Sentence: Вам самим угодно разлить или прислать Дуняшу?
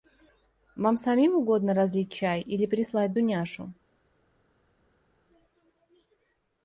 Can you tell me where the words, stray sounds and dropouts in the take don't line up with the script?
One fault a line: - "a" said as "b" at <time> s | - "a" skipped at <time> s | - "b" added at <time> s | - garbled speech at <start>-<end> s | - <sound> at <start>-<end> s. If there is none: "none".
- "чай" added at 2.1 s